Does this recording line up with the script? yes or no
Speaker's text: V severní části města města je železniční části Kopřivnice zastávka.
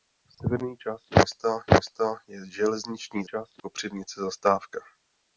yes